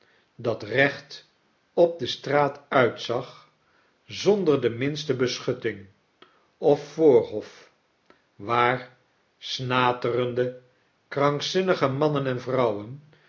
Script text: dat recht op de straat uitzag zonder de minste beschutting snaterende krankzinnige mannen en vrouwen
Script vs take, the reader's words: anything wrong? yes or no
yes